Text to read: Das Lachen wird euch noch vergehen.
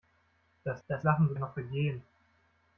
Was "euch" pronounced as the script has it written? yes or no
no